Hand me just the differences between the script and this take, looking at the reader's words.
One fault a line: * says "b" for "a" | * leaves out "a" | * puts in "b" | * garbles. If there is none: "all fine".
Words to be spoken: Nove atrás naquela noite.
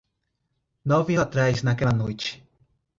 all fine